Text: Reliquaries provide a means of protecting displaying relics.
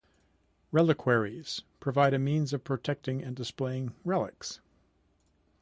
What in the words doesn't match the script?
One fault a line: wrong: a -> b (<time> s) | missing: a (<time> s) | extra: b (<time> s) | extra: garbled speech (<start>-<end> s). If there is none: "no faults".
extra: and (3.2 s)